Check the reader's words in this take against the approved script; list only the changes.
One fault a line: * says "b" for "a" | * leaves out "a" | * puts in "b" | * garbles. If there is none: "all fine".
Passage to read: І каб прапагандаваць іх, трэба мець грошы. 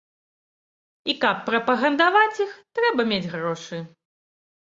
all fine